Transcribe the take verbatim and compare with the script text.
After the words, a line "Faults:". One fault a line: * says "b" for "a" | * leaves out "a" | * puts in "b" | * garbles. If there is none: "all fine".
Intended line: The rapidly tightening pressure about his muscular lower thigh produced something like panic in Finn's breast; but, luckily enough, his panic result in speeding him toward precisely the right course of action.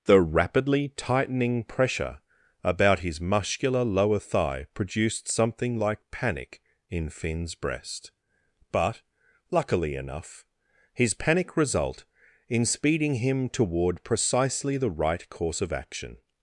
The rapidly tightening pressure about his muscular lower thigh produced something like panic in Finn's breast; but, luckily enough, his panic result in speeding him toward precisely the right course of action.
Faults:
all fine